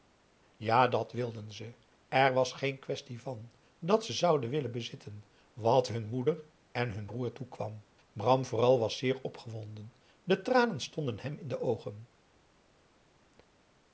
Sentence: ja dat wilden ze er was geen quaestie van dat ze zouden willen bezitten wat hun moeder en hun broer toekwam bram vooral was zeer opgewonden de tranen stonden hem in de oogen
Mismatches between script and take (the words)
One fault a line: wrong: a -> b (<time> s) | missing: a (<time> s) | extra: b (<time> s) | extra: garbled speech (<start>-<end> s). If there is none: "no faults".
no faults